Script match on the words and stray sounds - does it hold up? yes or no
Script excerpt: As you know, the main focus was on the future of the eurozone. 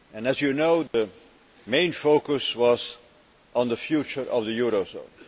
no